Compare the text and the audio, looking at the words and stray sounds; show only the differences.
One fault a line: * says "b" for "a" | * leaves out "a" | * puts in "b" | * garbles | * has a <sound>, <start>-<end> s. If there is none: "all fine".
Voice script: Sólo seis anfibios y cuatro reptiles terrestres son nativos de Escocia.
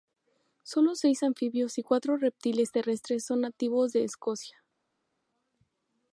all fine